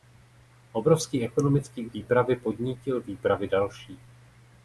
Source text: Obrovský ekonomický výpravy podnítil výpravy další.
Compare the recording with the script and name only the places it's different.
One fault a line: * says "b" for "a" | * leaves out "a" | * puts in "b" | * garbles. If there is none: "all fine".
all fine